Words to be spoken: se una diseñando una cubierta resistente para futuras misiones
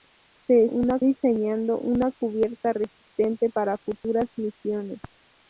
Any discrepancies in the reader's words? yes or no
no